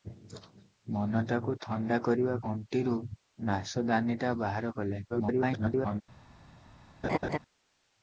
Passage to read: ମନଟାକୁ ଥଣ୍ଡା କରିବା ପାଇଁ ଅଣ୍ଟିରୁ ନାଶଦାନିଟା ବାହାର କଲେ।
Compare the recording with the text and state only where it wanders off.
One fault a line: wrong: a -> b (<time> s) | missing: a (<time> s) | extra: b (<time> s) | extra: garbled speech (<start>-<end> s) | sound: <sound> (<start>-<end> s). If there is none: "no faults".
missing: ପାଇଁ (2.4 s)
extra: garbled speech (5.1-6.0 s)
sound: laugh (7.0-7.4 s)